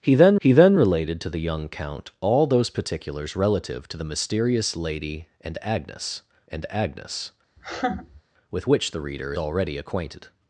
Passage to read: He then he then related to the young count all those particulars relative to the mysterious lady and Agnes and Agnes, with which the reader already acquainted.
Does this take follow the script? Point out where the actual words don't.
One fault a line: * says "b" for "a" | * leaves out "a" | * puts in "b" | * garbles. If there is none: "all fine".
all fine